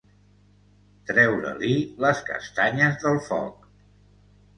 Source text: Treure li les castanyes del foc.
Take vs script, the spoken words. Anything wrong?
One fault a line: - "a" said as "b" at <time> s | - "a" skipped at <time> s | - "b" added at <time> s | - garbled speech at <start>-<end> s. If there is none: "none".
none